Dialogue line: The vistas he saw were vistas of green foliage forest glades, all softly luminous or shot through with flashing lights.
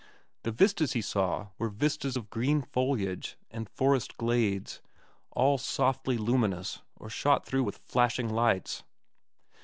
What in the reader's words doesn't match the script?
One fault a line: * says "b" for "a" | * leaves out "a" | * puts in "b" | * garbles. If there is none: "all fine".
* puts in "and"